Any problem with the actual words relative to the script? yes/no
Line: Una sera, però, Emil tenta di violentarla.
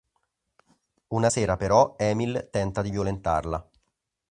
no